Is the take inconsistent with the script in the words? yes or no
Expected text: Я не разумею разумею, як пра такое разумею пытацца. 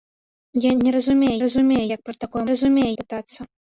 no